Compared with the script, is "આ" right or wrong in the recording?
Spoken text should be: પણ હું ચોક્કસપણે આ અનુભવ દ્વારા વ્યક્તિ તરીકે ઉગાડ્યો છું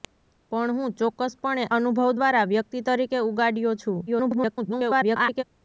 wrong